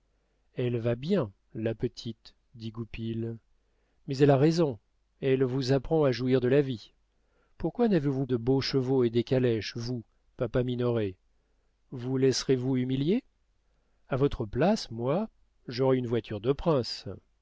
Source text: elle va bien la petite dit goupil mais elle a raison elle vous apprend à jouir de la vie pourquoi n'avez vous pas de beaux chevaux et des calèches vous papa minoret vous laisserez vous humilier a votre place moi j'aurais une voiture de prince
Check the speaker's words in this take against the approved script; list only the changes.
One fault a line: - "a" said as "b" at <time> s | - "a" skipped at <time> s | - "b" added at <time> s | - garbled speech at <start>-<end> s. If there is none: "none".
- "pas" skipped at 8.2 s